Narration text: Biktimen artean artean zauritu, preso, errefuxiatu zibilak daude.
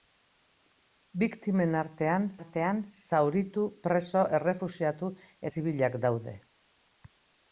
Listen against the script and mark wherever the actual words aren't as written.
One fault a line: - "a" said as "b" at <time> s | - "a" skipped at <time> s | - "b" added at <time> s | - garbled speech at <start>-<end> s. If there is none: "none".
none